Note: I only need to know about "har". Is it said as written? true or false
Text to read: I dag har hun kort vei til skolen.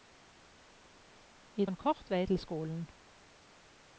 false